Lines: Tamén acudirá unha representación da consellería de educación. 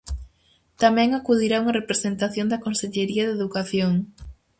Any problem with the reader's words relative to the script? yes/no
no